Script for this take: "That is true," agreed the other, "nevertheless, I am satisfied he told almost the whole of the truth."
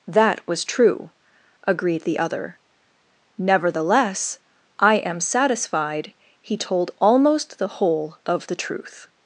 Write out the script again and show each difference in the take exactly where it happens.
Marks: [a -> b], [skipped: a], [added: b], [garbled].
"That [is -> was] true," agreed the other, "nevertheless, I am satisfied he told almost the whole of the truth."